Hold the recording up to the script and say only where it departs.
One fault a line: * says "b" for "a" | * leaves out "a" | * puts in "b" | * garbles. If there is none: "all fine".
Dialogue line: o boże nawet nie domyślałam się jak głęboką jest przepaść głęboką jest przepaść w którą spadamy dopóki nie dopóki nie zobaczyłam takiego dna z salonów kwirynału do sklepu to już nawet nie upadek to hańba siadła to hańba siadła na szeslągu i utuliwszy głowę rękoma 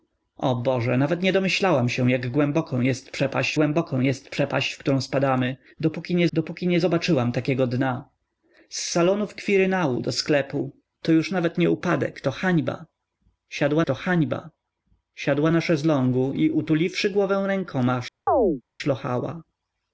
all fine